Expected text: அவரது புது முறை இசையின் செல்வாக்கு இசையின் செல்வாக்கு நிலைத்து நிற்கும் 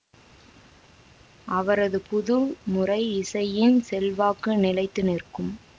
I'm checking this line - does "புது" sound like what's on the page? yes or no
yes